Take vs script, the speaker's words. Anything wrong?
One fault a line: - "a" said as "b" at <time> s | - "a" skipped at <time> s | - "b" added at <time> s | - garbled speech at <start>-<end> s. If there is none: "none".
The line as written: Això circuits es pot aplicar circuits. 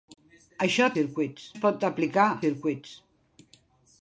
none